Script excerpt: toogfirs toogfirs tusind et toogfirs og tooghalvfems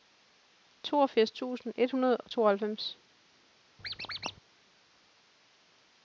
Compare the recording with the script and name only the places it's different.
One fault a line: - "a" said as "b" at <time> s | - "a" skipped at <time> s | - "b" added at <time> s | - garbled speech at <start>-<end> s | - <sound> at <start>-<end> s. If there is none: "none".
- "toogfirs" skipped at 1.3 s
- "toogfirs" said as "hundrede" at 1.9 s
- squeak at 3.8-4.4 s